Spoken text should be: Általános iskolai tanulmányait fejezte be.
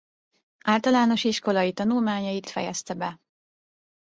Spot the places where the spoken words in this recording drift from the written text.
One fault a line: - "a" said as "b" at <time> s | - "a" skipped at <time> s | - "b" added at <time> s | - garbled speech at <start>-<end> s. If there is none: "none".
none